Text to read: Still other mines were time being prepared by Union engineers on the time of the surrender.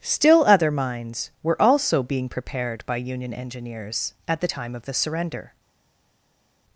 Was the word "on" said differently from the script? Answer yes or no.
yes